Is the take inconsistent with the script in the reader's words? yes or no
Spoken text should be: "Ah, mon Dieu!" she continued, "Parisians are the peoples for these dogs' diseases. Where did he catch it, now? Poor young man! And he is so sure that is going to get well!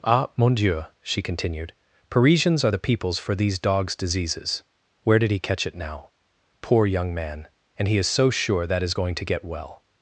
no